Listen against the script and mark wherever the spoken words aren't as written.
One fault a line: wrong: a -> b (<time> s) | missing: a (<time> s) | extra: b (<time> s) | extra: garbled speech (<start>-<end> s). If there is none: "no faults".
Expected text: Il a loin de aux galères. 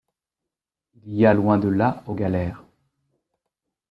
extra: y (1.1 s)
extra: là (1.7 s)